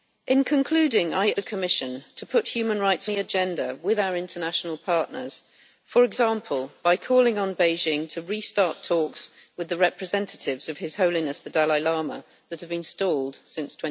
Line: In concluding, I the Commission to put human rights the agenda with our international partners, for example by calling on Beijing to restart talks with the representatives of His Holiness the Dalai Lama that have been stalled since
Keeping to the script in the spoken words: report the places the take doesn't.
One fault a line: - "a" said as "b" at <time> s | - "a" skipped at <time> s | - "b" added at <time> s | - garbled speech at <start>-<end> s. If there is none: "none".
none